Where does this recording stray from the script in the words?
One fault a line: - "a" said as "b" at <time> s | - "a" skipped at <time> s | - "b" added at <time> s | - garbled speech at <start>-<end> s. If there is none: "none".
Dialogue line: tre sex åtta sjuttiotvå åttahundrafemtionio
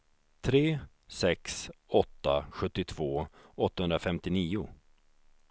none